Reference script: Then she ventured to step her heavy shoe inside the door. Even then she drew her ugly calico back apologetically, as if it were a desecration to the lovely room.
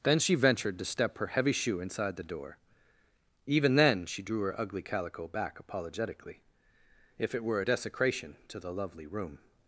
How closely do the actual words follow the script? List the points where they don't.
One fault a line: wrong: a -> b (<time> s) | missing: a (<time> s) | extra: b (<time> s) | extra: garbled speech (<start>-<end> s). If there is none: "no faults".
missing: as (6.4 s)